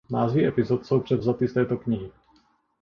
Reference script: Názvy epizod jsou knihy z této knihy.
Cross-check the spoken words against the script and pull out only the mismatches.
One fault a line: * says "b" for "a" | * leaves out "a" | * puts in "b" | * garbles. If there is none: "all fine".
* says "převzaty" for "knihy"